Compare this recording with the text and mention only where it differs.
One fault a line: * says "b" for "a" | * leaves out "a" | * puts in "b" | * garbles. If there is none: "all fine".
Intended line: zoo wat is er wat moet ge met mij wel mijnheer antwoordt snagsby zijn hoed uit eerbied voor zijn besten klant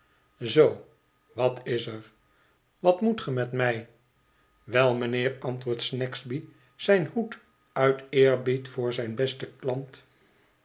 all fine